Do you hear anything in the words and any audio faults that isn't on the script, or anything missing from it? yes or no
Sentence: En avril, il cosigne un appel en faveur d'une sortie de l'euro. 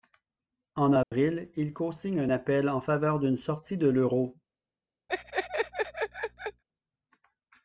yes